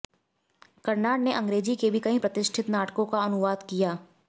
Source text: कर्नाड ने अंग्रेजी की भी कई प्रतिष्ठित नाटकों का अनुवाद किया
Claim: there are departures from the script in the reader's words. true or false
true